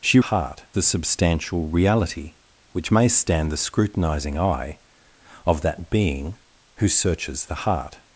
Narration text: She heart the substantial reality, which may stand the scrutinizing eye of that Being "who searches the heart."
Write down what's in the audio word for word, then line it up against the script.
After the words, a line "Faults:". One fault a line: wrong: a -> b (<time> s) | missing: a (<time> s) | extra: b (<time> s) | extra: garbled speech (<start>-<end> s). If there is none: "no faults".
She heart the substantial reality, which may stand the scrutinizing eye of that Being "who searches the heart."
Faults:
no faults